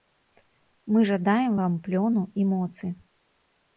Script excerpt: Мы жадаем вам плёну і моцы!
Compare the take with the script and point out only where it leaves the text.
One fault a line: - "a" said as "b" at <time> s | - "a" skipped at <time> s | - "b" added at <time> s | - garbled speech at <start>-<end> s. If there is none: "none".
none